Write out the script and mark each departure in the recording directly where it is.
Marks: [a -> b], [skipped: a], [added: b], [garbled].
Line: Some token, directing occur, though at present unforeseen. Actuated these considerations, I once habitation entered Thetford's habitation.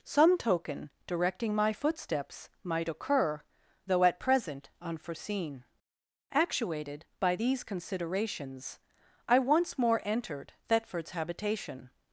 Some token, directing [added: my footsteps might] occur, though at present unforeseen. Actuated [added: by] these considerations, I once [habitation -> more] entered Thetford's habitation.